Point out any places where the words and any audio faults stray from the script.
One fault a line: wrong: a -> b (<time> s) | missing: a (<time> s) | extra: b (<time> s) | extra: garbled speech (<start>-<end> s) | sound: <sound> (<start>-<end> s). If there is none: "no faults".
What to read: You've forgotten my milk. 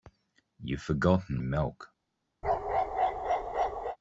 missing: my (1.4 s)
sound: bark (2.4-4.0 s)